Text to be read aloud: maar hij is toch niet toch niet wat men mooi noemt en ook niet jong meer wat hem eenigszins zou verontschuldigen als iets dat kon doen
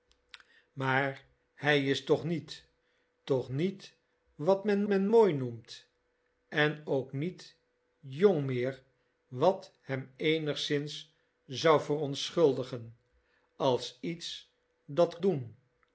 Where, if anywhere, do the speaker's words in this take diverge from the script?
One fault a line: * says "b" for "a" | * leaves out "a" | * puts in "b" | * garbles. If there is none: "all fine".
* puts in "men"
* leaves out "kon"